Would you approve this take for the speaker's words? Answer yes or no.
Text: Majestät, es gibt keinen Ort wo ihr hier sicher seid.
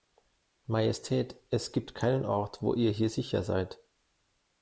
yes